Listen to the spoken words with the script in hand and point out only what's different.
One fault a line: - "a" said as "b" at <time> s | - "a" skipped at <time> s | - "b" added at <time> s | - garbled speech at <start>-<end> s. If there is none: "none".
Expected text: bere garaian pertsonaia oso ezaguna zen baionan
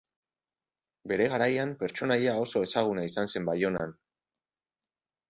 - "izan" added at 3.1 s